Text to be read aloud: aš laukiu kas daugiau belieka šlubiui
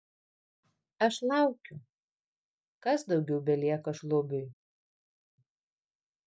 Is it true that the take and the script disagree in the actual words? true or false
false